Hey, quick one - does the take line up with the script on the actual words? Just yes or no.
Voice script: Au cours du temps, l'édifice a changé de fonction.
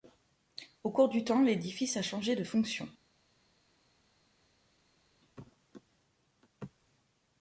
yes